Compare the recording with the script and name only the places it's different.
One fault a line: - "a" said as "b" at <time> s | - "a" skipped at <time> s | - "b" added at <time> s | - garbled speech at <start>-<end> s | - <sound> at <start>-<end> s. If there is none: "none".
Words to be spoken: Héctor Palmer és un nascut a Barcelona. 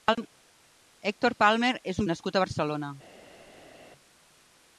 none